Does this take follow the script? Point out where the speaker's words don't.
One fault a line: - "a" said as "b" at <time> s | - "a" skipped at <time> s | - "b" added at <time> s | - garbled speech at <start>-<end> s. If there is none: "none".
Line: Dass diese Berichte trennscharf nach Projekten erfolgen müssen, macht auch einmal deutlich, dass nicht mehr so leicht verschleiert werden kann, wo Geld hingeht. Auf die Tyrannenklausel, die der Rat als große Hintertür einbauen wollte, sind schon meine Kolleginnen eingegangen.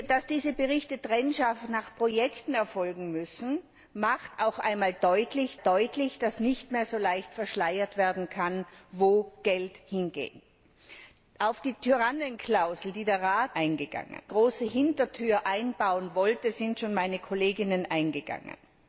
- "deutlich" added at 5.6 s
- "als" said as "eingegangen" at 13.5 s